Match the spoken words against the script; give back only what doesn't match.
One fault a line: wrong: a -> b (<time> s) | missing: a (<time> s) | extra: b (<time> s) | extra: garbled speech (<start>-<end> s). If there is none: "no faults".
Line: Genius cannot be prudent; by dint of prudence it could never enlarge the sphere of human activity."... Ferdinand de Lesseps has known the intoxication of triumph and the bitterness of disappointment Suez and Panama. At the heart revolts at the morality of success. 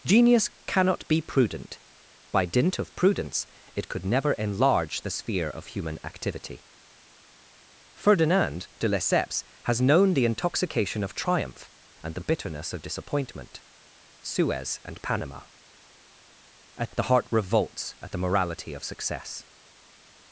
no faults